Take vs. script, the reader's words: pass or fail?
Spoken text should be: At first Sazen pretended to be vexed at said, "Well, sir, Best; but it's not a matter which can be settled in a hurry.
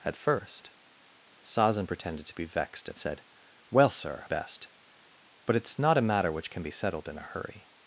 pass